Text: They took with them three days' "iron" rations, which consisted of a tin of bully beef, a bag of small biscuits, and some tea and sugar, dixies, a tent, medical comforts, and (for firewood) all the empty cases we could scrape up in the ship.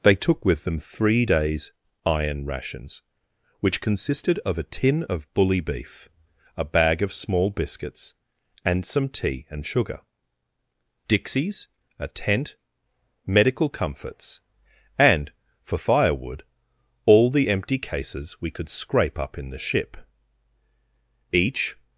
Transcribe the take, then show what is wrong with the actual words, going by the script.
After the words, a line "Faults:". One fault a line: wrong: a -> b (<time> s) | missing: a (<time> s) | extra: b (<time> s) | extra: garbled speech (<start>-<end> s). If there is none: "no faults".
They took with them three days' "iron" rations, which consisted of a tin of bully beef, a bag of small biscuits, and some tea and sugar, dixies, a tent, medical comforts, and (for firewood) all the empty cases we could scrape up in the ship. Each
Faults:
extra: Each (21.3 s)